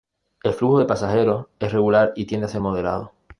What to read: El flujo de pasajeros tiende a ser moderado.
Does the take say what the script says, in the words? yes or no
no